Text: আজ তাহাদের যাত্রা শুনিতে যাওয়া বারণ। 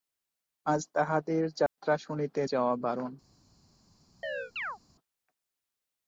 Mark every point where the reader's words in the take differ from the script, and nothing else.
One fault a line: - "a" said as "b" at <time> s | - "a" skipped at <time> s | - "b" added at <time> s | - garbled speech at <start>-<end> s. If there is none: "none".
none